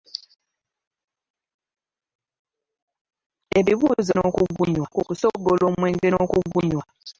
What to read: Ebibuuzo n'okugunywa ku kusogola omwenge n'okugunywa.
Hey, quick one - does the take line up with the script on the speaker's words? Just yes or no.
yes